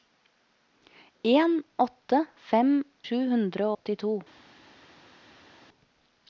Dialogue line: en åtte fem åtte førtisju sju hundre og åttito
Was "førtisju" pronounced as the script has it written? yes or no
no